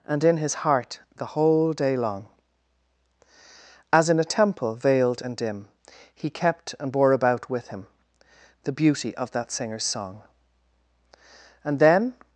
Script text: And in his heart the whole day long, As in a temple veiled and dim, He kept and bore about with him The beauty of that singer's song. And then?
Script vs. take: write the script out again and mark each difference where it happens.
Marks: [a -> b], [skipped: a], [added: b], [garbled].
And in his heart the whole day long, As in a temple veiled and dim, He kept and bore about with him The beauty of that singer's song. And then?